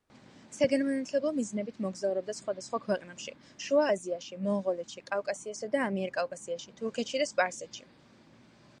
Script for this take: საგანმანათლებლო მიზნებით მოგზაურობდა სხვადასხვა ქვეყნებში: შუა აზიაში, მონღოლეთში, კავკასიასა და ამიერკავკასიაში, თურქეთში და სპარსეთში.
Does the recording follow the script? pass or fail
pass